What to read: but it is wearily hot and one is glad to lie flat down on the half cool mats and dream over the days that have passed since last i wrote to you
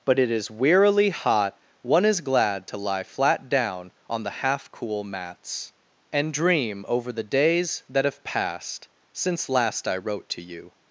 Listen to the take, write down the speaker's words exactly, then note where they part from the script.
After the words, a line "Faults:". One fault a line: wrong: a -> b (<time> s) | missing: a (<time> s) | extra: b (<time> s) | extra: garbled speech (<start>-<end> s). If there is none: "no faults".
but it is wearily hot one is glad to lie flat down on the half cool mats and dream over the days that have passed since last i wrote to you
Faults:
missing: and (1.6 s)